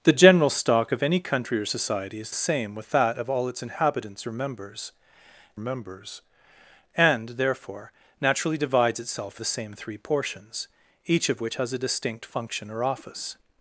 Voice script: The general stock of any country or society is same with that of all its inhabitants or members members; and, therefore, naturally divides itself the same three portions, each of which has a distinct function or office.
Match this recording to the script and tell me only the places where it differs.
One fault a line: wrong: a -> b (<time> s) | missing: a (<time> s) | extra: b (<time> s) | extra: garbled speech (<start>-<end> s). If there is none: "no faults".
no faults